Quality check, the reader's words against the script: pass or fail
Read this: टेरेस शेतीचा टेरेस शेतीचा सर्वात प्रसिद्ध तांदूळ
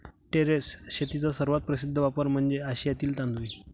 fail